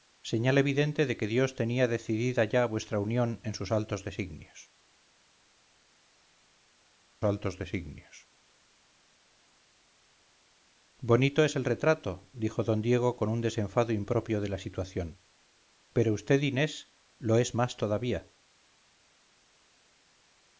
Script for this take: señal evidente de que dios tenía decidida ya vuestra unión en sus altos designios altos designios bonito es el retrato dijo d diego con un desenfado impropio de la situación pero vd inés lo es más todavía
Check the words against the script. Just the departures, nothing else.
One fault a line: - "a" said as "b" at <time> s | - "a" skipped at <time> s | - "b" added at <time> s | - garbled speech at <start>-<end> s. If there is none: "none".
none